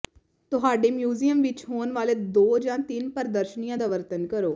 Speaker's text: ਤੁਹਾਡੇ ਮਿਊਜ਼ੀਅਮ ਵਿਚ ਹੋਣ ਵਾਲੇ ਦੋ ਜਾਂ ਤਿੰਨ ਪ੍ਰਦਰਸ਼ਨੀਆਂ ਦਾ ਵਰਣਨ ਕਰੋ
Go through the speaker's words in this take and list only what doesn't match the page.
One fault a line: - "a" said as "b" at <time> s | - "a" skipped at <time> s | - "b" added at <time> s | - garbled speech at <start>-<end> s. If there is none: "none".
none